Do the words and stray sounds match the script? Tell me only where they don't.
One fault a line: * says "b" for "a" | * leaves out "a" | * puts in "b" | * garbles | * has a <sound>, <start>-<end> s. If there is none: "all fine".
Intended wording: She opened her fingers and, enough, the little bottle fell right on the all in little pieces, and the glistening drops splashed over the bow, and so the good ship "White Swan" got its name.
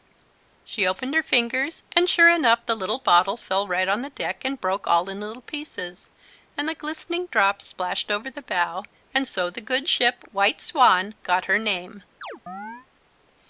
* puts in "sure"
* puts in "deck and broke"
* says "her" for "its"
* has a chirp, 12.2-12.9 s